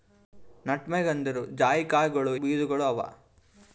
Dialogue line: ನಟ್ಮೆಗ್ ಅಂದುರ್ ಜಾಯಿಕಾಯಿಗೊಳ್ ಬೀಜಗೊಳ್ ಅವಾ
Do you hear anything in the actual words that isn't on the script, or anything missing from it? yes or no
no